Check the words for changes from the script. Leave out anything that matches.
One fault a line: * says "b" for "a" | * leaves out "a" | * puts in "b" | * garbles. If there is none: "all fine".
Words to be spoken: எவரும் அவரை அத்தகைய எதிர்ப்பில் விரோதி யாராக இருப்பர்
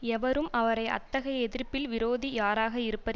all fine